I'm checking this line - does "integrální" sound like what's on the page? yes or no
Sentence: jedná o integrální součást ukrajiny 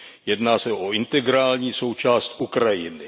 yes